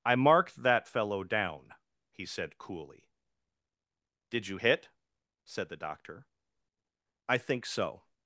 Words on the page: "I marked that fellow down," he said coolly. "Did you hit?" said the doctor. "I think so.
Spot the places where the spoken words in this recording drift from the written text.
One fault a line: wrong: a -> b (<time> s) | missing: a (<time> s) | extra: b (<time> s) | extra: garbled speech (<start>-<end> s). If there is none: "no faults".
no faults